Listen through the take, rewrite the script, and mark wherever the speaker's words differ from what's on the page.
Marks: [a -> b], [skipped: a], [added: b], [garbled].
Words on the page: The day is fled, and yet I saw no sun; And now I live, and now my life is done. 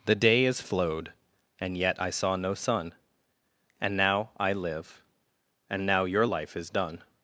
The day is [fled, -> flowed] and yet I saw no sun; And now I live, and now [my -> your] life is done.